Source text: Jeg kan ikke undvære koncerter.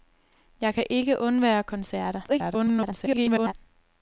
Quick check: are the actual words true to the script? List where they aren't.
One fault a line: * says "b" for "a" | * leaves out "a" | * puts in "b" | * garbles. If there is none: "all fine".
* garbles